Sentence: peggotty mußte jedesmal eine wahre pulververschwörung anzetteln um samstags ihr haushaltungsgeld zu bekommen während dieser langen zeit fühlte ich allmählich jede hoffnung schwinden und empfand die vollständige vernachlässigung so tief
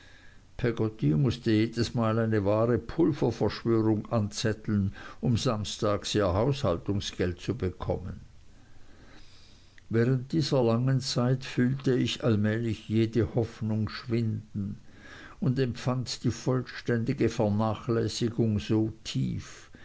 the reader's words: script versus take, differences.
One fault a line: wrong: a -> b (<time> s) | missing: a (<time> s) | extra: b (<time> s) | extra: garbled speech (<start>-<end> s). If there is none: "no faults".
no faults